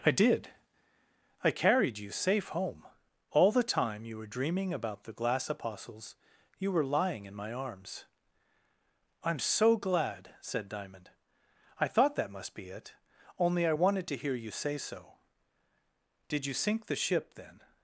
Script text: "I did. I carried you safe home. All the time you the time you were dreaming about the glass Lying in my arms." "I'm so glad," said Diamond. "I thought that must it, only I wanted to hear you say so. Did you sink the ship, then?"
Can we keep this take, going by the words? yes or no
no